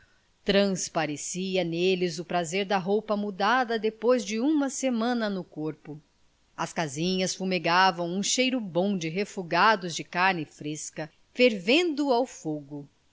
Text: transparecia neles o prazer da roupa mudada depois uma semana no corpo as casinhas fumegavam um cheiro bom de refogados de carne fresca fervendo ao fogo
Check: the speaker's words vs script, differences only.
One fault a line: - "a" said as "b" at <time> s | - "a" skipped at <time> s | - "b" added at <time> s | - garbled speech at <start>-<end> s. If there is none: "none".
- "de" added at 4.2 s